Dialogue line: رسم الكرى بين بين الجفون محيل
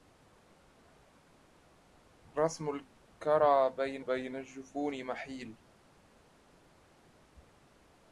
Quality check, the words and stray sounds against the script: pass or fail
pass